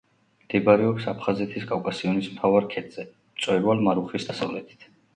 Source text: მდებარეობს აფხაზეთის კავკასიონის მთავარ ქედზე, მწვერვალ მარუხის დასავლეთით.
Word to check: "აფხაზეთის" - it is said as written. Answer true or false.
true